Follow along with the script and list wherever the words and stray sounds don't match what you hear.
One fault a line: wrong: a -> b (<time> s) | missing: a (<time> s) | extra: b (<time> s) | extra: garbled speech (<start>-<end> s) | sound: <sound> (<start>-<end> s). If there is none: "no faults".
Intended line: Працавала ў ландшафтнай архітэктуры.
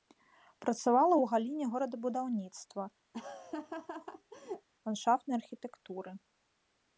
extra: галіне горадабудаўніцтва (1.3 s)
sound: laugh (3.1-4.7 s)